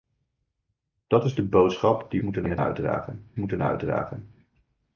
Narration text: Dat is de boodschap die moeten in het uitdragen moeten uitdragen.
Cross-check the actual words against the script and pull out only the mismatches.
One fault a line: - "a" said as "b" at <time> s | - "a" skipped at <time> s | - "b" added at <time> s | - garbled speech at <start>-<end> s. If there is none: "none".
none